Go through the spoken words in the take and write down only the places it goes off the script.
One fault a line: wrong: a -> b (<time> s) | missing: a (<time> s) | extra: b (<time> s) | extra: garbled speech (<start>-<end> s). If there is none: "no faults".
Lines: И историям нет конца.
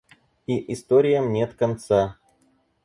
no faults